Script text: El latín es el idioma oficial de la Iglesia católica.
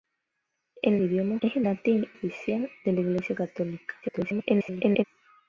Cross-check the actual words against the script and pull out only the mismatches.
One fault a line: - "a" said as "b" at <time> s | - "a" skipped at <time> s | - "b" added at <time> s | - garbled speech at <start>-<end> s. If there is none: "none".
- "latín" said as "idioma" at 1.0 s
- "idioma" said as "latín" at 1.6 s
- garbled speech at 4.0-5.0 s